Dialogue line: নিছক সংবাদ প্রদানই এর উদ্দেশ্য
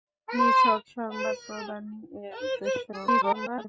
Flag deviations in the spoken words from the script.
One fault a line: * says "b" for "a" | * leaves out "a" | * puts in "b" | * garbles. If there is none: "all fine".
* garbles